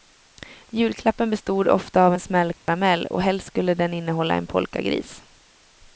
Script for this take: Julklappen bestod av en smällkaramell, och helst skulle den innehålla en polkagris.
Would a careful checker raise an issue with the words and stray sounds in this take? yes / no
yes